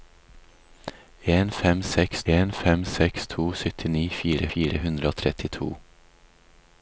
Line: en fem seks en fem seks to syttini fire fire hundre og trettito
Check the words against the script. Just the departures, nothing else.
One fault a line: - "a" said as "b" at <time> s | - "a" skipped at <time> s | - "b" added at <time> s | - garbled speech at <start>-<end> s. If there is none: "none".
none